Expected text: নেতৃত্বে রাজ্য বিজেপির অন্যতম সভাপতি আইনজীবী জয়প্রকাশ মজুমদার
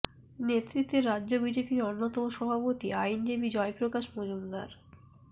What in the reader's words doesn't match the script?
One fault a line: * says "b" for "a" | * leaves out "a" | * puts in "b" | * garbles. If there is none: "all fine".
all fine